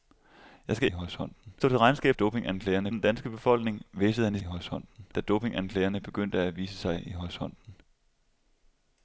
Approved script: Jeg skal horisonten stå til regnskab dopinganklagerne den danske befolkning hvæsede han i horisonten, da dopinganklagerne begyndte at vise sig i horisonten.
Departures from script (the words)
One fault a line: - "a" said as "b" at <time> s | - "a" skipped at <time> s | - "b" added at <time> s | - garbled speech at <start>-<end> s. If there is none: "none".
none